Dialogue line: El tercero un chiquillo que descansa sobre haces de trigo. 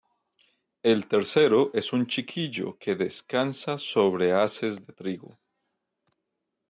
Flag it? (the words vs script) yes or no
yes